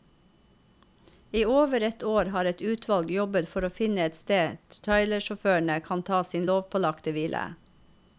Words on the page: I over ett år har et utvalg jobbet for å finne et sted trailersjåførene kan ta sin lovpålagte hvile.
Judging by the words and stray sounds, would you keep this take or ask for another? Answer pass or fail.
pass